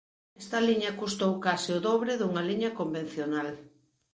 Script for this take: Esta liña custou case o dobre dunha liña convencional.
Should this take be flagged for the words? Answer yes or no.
no